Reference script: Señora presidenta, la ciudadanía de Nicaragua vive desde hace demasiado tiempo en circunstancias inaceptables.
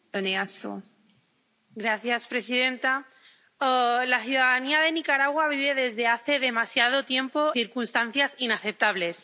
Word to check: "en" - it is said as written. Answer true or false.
false